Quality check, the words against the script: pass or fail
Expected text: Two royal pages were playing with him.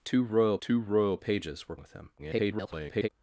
fail